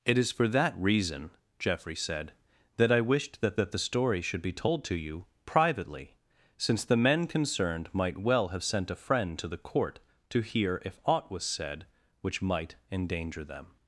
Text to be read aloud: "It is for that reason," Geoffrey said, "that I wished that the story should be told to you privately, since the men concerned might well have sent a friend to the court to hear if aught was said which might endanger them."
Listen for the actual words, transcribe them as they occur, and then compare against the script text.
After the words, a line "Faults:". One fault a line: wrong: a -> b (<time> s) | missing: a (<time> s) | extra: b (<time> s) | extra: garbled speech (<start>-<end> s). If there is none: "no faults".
"It is for that reason," Geoffrey said, "that I wished that that the story should be told to you privately, since the men concerned might well have sent a friend to the court to hear if aught was said which might endanger them."
Faults:
extra: that (3.6 s)